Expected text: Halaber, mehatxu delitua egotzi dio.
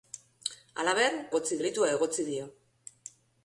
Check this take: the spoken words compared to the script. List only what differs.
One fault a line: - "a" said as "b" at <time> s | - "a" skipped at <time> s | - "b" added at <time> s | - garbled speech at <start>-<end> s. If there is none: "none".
- "mehatxu" said as "egotzi" at 1.3 s